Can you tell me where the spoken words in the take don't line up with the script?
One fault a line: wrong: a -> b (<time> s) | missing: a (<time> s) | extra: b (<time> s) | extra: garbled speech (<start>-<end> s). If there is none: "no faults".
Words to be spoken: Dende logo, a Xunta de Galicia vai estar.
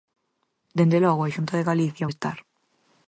missing: vai (2.1 s)